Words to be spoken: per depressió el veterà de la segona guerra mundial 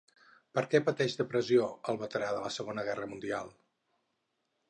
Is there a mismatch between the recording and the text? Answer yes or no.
yes